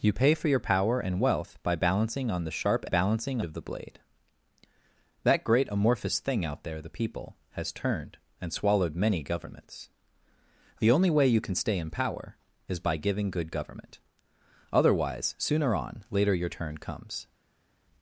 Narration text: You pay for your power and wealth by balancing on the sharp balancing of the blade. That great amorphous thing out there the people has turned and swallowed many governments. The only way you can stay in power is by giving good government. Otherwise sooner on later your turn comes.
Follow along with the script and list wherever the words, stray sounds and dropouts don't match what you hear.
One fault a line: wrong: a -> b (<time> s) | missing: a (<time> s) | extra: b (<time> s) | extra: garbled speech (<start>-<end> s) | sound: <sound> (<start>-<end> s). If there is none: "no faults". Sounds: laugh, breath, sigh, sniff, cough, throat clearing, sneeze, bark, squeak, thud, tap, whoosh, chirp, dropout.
no faults